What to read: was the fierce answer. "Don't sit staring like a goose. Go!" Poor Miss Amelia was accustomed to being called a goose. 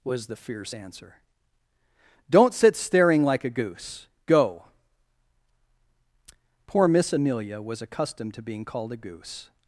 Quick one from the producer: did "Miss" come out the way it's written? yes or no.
yes